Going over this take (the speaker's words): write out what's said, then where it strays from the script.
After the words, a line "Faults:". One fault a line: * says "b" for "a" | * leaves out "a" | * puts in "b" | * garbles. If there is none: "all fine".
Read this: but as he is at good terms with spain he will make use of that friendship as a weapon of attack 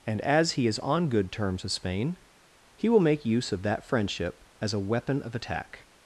and as he is on good terms with spain he will make use of that friendship as a weapon of attack
Faults:
* says "and" for "but"
* says "on" for "at"